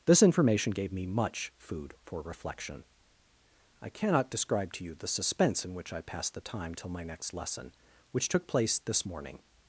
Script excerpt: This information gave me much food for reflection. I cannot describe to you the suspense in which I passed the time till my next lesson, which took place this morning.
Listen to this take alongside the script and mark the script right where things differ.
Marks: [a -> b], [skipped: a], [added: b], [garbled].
This information gave me much food for reflection. I cannot describe to you the suspense in which I passed the time till my next lesson, which took place this morning.